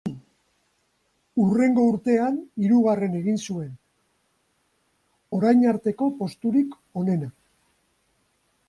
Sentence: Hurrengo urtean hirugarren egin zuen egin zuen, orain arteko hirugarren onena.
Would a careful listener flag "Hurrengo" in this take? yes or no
no